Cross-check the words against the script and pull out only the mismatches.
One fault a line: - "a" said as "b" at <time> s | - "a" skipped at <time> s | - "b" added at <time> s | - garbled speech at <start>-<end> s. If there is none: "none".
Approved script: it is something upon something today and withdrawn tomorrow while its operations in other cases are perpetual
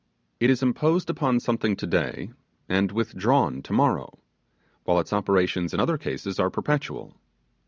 - "something" said as "imposed" at 0.6 s